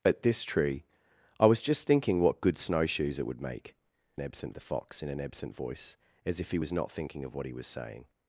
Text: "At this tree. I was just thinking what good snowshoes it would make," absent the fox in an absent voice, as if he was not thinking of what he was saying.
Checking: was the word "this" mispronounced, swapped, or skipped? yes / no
no